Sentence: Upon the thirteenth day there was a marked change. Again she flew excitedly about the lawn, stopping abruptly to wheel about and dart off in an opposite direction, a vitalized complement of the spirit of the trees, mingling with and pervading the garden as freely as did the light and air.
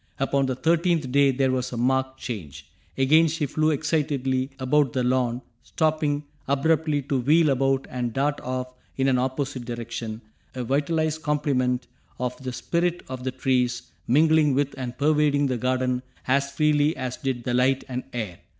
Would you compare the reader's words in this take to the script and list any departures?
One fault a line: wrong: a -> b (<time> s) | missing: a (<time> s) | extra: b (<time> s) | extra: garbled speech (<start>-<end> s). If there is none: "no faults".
no faults